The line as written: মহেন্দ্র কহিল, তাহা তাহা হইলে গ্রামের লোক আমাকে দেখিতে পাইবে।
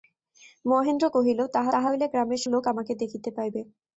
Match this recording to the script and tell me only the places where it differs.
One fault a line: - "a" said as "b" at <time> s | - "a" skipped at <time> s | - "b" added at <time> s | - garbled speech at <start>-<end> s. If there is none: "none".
none